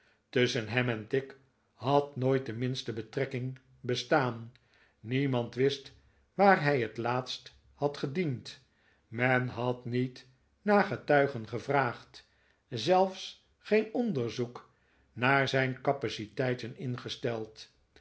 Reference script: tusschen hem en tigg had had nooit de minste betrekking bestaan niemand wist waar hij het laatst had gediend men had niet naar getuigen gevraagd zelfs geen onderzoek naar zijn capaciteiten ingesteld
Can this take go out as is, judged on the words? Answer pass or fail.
fail